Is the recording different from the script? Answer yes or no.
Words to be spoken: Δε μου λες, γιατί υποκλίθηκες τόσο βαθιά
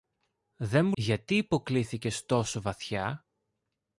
yes